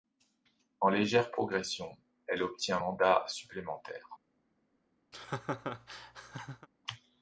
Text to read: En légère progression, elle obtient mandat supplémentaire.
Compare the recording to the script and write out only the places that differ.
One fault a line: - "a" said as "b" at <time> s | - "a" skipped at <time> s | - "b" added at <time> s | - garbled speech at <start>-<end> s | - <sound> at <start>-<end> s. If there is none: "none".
- laugh at 5.1-6.7 s